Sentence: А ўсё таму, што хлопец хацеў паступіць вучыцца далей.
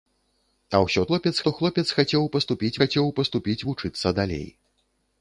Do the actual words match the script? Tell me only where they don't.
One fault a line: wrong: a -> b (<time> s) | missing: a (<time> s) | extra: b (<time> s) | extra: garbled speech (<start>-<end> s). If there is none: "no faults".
wrong: таму -> хлопец (1.1 s)
extra: хацеў паступіць (2.8 s)